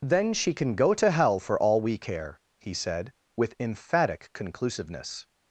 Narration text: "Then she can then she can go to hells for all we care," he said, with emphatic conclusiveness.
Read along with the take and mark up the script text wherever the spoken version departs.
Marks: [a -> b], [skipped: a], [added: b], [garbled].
"Then she can [skipped: then she can] go to [hells -> hell] for all we care," he said, with emphatic conclusiveness.